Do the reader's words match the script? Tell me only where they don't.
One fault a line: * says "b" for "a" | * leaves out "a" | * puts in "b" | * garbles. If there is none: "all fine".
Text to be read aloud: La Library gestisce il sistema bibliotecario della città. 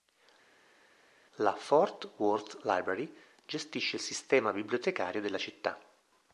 * puts in "Fort Worth"